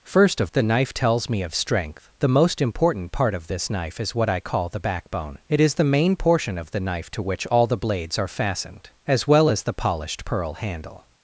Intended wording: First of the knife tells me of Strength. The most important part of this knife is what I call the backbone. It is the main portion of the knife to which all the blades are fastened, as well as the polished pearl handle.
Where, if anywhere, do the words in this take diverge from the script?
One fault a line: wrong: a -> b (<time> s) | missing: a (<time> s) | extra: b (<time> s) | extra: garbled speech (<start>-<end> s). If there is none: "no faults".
no faults